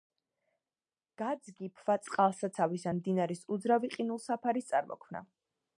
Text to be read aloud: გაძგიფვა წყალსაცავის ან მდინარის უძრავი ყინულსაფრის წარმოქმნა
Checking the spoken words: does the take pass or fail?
pass